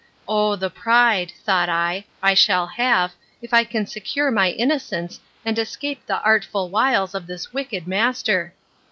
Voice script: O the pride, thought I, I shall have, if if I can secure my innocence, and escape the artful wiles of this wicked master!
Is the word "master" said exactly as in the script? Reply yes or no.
yes